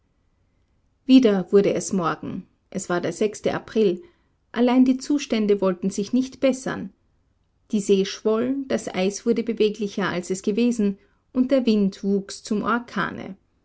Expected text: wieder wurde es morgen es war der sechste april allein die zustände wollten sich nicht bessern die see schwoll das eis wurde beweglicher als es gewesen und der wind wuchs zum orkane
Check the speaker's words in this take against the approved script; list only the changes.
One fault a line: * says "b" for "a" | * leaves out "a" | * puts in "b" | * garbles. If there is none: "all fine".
all fine